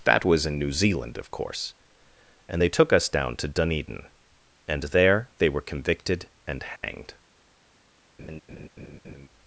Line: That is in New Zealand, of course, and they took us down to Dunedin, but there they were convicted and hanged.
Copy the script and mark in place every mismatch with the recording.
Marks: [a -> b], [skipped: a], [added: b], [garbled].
That [is -> was] in New Zealand, of course, and they took us down to Dunedin, [but -> and] there they were convicted and hanged.